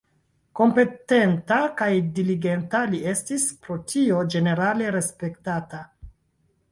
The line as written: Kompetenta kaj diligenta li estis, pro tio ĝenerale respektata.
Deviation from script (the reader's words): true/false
false